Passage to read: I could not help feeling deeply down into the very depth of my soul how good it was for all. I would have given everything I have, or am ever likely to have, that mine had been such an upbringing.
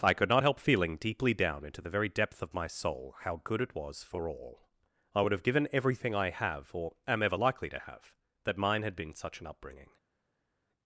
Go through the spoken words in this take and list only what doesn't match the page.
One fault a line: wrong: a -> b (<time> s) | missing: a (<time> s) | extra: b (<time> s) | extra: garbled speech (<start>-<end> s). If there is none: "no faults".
no faults